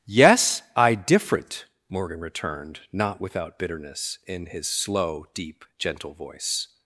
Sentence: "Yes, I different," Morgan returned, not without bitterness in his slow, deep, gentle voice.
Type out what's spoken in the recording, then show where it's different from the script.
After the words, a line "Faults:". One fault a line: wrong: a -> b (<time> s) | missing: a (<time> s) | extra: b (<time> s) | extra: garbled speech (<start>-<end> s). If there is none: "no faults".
"Yes, I different," Morgan returned, not without bitterness in his slow, deep, gentle voice.
Faults:
no faults